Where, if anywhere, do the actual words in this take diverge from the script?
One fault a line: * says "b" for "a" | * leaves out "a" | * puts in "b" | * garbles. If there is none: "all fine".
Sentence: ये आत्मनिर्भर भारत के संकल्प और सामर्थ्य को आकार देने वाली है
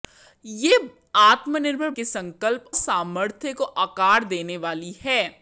* leaves out "भारत"
* leaves out "और"